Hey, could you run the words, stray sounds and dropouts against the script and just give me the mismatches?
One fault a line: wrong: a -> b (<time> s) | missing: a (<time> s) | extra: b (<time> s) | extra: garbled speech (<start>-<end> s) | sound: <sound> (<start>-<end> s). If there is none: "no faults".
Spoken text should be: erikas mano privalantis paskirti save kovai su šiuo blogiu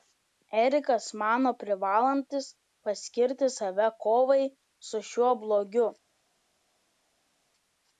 no faults